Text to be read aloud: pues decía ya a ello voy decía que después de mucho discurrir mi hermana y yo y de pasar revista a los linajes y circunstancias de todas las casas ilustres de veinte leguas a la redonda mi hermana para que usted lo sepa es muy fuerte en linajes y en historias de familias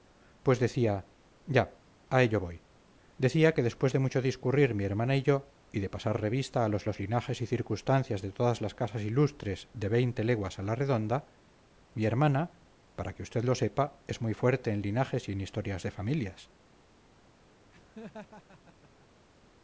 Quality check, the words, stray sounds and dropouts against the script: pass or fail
fail